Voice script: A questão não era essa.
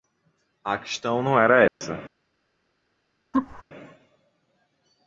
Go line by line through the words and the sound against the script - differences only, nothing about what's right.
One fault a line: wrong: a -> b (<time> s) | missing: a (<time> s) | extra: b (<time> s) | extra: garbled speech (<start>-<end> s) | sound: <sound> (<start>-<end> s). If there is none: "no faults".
sound: dropout (1.7-1.8 s)
sound: laugh (3.3-3.6 s)